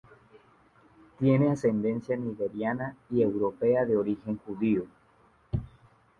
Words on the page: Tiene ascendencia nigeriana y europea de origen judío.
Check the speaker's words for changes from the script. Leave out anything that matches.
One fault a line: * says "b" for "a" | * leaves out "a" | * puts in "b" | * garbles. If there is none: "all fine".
all fine